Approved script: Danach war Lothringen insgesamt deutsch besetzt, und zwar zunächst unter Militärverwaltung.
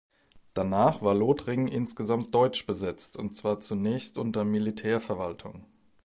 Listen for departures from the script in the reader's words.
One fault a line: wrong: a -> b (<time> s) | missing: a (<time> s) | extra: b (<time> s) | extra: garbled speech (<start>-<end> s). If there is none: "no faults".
no faults